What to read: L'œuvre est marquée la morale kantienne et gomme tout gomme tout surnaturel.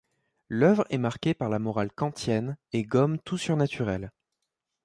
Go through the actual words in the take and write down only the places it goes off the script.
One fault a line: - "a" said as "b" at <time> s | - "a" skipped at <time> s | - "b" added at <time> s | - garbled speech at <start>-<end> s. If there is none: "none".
- "par" added at 1.4 s
- "gomme tout" skipped at 3.4 s